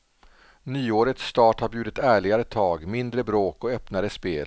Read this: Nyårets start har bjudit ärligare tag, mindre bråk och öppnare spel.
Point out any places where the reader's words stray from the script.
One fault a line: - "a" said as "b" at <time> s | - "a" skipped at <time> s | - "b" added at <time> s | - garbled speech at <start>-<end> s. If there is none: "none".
none